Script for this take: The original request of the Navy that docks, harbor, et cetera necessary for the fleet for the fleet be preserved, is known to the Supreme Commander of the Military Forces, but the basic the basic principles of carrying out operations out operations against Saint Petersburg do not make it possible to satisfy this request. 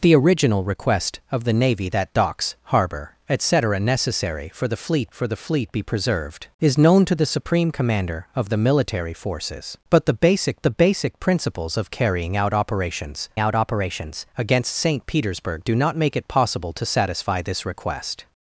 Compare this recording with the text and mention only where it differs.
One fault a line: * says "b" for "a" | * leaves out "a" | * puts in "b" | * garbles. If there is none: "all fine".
all fine